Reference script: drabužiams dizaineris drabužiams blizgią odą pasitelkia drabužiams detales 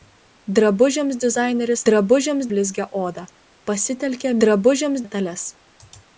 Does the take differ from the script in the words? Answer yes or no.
no